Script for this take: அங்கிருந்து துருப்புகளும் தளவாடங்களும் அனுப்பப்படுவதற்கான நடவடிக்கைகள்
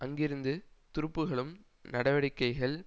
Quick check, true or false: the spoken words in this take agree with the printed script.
false